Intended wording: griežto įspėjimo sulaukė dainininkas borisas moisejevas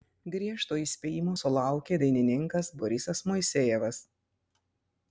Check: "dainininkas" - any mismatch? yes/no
no